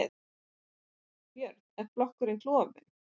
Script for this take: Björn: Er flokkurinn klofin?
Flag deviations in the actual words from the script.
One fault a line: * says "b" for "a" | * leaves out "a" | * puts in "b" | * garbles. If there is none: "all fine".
all fine